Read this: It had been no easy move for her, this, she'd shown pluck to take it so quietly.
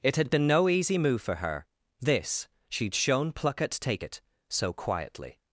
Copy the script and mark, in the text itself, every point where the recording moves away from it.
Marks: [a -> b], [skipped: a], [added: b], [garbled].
It had been no easy move for her, this, she'd shown pluck [to -> at] take it so quietly.